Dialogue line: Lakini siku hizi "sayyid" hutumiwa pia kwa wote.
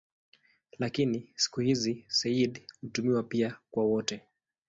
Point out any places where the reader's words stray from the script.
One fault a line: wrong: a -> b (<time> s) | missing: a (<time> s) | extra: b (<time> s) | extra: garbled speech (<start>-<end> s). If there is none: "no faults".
no faults